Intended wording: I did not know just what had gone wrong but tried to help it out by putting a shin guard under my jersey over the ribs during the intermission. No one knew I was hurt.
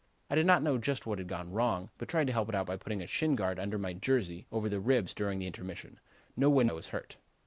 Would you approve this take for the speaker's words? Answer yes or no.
no